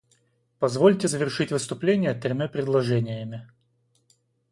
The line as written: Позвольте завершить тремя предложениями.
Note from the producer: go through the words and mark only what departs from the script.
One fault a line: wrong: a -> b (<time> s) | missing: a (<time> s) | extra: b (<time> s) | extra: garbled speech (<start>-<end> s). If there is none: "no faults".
extra: выступление (1.5 s)